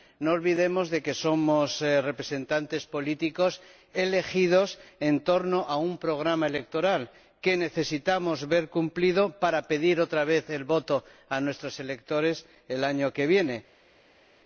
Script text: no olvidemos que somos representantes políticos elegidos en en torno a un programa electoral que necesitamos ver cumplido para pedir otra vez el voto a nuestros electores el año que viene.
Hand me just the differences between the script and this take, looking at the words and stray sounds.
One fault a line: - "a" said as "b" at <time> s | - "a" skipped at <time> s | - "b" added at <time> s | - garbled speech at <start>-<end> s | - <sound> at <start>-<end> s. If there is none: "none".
- "en" skipped at 5.2 s